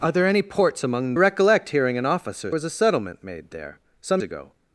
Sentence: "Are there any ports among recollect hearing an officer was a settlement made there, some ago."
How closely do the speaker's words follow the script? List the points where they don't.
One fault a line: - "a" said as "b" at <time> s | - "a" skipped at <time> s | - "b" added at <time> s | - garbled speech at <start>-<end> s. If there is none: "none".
none